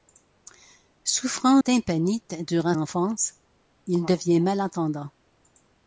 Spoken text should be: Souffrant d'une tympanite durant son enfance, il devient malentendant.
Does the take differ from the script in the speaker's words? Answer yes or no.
yes